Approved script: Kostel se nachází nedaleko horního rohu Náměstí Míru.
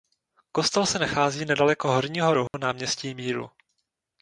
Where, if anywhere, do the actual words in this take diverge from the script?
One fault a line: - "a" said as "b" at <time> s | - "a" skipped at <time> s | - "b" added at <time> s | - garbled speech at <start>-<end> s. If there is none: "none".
none